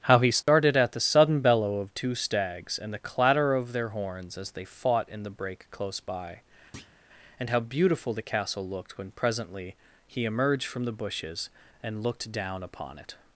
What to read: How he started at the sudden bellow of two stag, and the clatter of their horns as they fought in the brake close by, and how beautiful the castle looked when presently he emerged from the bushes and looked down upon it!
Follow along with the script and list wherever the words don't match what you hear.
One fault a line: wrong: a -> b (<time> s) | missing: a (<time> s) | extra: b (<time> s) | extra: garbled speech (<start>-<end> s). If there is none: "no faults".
wrong: stag -> stags (2.1 s)